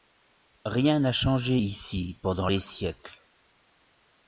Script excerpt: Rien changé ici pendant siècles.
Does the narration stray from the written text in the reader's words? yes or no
yes